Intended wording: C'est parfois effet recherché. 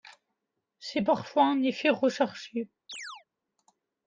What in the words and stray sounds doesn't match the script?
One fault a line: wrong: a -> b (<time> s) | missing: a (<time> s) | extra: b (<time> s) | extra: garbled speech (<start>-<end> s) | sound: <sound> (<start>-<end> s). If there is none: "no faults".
extra: un (1.5 s)
sound: chirp (2.9-3.2 s)